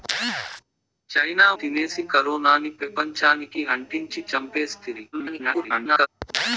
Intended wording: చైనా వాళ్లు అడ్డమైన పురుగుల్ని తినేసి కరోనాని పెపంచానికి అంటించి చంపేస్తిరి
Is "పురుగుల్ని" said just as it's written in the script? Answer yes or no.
no